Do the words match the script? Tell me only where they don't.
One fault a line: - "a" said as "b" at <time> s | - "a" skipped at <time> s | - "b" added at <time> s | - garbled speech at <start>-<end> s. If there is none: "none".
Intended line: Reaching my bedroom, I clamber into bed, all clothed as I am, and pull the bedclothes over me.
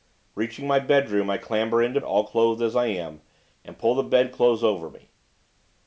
- "bed" skipped at 2.0 s